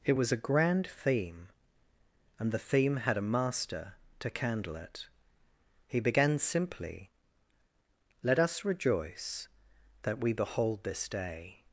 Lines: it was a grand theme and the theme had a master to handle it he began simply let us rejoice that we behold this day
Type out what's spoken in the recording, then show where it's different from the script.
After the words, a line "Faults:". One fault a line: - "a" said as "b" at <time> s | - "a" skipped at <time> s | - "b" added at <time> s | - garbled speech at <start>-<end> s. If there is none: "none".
it was a grand theme and the theme had a master to candle it he began simply let us rejoice that we behold this day
Faults:
- "handle" said as "candle" at 4.3 s